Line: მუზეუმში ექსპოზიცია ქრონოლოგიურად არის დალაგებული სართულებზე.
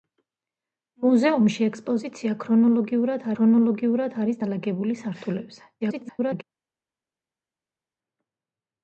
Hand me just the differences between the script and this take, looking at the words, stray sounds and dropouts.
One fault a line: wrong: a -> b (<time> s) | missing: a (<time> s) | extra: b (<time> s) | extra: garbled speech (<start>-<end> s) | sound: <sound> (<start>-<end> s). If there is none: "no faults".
extra: ქრონოლოგიურად (3.4 s)
extra: garbled speech (5.8-6.4 s)